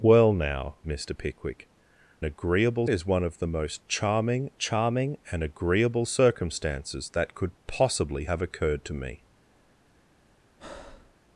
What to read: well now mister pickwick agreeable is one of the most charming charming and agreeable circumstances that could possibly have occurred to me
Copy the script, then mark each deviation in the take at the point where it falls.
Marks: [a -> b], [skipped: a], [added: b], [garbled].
well now mister pickwick agreeable is one of the most charming charming and agreeable circumstances that could possibly have occurred to me